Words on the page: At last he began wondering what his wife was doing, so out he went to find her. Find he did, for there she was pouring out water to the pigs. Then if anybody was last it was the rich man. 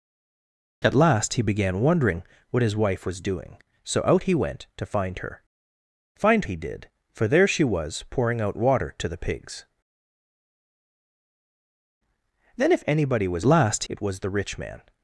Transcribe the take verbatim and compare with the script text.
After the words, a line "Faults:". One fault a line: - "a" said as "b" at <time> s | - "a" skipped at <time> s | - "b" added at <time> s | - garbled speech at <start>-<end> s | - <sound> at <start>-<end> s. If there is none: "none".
At last he began wondering what his wife was doing, so out he went to find her. Find he did, for there she was pouring out water to the pigs. Then if anybody was last it was the rich man.
Faults:
none